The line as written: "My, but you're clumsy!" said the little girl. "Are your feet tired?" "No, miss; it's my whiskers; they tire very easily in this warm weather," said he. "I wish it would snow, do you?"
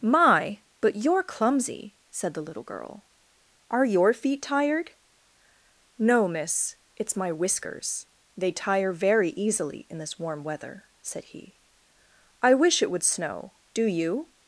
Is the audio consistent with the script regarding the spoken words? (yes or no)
yes